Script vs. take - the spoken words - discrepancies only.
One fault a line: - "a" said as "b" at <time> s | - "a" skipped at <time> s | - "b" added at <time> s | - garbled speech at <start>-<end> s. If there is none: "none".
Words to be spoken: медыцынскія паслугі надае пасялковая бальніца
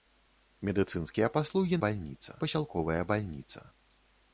- "надае" said as "бальніца" at 1.9 s